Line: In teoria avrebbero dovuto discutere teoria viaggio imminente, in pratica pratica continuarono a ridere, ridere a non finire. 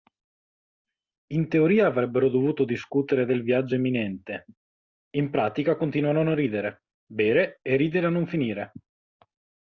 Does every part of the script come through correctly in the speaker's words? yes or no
no